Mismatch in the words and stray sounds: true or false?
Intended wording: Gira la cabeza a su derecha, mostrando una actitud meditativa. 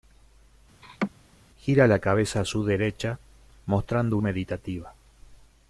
true